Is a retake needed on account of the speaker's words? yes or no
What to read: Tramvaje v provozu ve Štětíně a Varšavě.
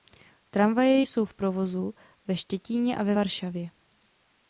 yes